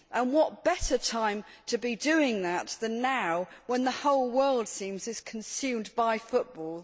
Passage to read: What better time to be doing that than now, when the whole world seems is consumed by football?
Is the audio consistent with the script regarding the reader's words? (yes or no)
yes